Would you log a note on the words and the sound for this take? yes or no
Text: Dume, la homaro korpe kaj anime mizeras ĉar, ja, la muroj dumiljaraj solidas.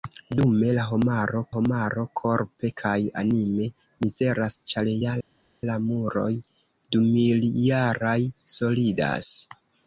yes